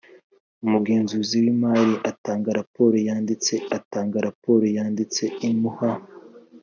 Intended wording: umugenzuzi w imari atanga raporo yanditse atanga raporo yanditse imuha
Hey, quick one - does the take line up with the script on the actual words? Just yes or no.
yes